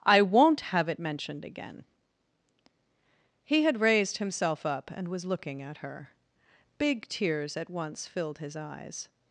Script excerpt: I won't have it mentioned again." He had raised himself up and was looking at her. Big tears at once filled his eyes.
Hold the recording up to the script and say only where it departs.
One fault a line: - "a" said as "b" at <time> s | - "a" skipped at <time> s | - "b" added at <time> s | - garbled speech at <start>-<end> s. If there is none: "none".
none